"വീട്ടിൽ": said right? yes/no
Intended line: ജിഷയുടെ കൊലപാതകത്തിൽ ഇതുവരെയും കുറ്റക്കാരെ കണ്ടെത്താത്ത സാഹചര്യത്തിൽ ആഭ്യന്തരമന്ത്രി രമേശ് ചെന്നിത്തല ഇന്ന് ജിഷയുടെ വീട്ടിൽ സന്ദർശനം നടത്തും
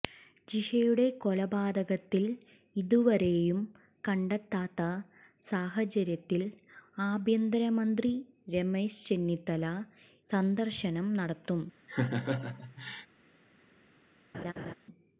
no